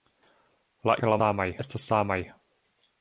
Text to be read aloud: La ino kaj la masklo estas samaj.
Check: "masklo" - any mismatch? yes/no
yes